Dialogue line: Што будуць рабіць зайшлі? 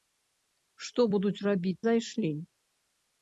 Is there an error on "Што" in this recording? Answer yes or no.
no